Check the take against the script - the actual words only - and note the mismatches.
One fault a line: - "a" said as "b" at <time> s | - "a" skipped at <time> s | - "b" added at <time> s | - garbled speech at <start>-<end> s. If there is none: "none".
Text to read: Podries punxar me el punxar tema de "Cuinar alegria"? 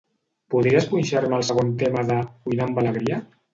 - "punxar" said as "segon" at 1.5 s
- "amb" added at 2.7 s